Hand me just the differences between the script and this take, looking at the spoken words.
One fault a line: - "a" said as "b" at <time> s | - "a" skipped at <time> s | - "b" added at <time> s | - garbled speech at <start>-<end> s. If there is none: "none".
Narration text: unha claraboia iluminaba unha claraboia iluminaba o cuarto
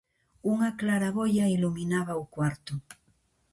- "unha claraboia iluminaba" skipped at 2.1 s